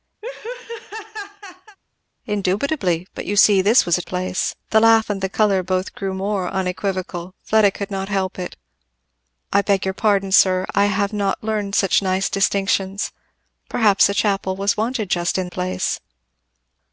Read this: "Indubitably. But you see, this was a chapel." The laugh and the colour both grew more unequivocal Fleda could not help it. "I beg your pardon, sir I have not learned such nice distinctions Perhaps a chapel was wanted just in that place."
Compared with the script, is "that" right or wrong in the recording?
wrong